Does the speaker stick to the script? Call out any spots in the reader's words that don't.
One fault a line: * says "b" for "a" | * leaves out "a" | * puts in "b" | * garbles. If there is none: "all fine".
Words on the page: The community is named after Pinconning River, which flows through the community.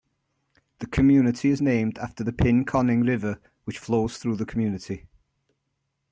* puts in "the"